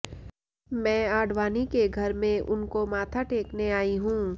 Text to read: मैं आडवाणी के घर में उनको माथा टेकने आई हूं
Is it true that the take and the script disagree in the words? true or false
false